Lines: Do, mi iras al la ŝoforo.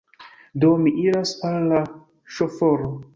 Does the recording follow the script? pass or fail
pass